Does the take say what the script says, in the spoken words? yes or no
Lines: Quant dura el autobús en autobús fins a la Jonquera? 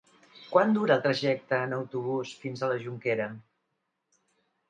no